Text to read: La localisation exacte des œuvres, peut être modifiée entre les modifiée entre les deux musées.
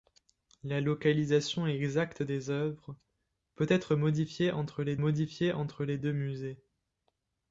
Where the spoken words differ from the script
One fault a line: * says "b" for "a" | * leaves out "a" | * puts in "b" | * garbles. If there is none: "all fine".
all fine